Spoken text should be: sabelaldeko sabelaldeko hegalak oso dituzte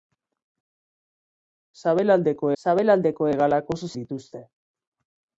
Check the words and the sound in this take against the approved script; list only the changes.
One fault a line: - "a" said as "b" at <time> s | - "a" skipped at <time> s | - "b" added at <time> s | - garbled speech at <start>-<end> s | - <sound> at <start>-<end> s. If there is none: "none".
none